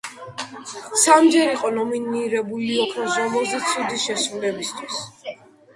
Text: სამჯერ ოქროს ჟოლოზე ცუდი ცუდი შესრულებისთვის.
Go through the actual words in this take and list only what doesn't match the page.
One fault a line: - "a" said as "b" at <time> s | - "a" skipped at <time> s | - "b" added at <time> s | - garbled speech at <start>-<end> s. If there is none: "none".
- "იყო ნომინირებული" added at 1.6 s
- "ცუდი" skipped at 4.0 s